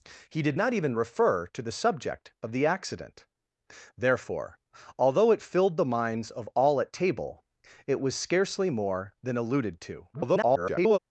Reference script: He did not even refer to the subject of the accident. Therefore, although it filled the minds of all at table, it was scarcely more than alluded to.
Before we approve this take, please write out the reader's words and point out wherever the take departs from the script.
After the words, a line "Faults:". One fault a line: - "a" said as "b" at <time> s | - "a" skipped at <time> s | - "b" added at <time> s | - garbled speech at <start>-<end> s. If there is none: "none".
He did not even refer to the subject of the accident. Therefore, although it filled the minds of all at table, it was scarcely more than alluded to. [garbled]
Faults:
- garbled speech at 10.1-11.0 s